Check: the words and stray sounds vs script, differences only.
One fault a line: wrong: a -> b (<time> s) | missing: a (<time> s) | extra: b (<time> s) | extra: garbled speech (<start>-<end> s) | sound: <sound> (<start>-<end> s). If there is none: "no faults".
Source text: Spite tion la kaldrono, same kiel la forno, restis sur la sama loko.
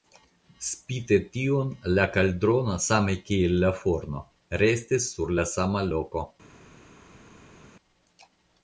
no faults